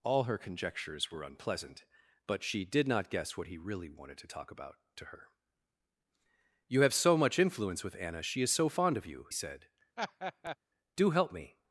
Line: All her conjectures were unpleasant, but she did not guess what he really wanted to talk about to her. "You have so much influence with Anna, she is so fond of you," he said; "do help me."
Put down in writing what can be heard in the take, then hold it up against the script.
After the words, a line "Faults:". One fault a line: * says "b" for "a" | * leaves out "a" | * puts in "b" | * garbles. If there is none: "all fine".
All her conjectures were unpleasant, but she did not guess what he really wanted to talk about to her. "You have so much influence with Anna, she is so fond of you," said; "do help me."
Faults:
* leaves out "he"